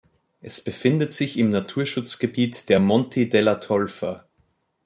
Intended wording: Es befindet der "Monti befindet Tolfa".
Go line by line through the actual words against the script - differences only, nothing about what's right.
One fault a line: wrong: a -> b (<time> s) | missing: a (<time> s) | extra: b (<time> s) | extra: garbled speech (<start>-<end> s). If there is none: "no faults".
extra: sich im Naturschutzgebiet (1.1 s)
wrong: befindet -> della (3.3 s)